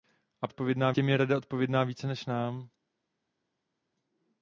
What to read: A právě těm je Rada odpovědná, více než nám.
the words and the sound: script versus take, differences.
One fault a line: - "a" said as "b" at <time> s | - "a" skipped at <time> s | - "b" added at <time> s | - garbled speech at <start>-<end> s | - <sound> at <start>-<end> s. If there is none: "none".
- "právě" said as "odpovědná" at 0.5 s